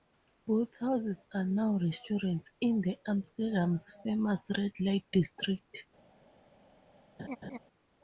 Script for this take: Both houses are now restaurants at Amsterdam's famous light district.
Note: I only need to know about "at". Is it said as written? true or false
false